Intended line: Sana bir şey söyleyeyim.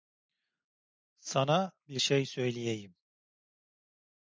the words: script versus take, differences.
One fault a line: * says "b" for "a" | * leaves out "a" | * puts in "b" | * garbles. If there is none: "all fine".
all fine